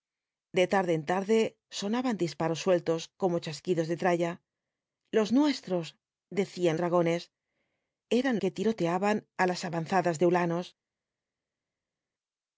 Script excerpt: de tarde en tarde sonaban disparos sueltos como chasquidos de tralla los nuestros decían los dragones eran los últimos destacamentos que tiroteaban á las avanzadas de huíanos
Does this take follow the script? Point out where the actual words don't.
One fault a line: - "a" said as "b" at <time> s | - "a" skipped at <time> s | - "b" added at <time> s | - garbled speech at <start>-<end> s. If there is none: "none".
- "los" skipped at 6.8 s
- "los últimos destacamentos" skipped at 8.4 s